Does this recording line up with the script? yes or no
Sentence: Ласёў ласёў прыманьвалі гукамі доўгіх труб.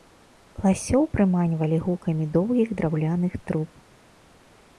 no